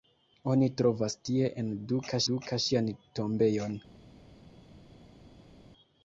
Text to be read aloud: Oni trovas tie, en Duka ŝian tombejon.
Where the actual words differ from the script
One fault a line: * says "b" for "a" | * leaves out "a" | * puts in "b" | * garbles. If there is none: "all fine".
* puts in "Duka"